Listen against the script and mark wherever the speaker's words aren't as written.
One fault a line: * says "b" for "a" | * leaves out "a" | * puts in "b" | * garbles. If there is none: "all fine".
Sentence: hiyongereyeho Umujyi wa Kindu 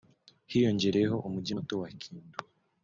* puts in "muto"